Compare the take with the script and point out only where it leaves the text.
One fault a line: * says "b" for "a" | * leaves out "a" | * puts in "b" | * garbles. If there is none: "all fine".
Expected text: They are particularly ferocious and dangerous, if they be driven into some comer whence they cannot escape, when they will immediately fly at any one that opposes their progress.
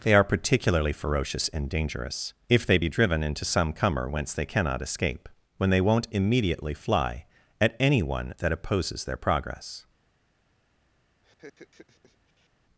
* says "won't" for "will"